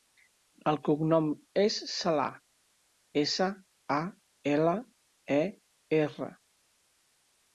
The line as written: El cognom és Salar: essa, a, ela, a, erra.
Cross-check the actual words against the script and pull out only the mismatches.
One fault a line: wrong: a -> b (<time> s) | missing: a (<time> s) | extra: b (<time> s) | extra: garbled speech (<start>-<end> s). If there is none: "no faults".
no faults